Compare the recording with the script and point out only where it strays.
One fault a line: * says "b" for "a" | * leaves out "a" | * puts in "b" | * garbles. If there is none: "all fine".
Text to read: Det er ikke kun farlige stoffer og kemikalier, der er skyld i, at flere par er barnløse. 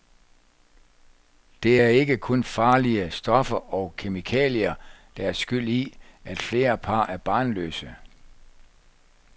all fine